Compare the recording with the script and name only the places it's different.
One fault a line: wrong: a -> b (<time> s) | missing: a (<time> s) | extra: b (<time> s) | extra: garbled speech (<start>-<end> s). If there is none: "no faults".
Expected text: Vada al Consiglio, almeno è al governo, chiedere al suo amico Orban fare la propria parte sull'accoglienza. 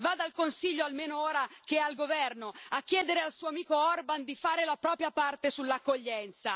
extra: ora che (1.2 s)
extra: a (2.7 s)
extra: di (4.2 s)